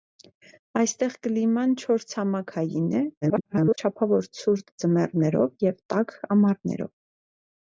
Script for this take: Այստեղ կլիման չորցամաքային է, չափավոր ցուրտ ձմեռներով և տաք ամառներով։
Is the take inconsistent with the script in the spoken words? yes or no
yes